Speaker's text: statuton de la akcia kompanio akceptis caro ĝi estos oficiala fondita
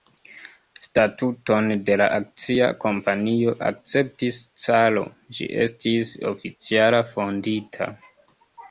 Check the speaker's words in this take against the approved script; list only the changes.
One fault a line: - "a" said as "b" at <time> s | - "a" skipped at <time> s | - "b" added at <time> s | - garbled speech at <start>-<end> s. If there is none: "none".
- "estos" said as "estis" at 5.7 s